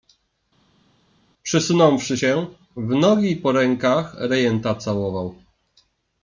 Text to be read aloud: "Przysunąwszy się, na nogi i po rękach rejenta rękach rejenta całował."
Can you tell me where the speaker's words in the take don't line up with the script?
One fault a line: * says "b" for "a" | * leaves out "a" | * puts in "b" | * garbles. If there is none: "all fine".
* says "w" for "na"
* leaves out "rękach rejenta"